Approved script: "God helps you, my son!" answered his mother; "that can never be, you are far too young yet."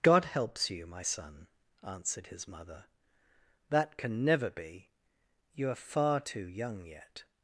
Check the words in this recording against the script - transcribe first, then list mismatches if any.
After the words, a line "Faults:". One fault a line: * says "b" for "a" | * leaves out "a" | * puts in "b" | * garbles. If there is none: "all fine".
"God helps you, my son!" answered his mother; "that can never be, you are far too young yet."
Faults:
all fine